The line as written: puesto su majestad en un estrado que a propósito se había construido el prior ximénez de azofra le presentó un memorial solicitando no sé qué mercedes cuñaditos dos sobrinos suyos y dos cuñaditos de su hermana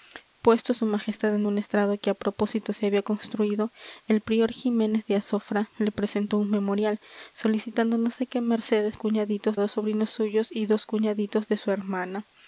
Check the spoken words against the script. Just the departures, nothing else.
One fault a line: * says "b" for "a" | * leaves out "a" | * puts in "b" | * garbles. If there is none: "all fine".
all fine